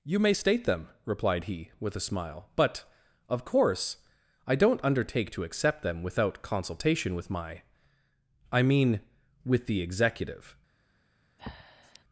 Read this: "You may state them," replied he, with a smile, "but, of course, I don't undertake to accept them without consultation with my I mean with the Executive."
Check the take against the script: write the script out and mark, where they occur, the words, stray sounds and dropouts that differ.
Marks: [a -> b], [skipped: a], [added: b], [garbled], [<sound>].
"You may state them," replied he, with a smile, "but, of course, I don't undertake to accept them without consultation with my I mean with the Executive." [breath]